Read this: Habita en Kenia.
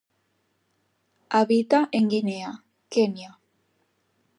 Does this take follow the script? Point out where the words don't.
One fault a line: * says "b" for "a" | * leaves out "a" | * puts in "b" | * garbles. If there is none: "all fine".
* puts in "Guinea"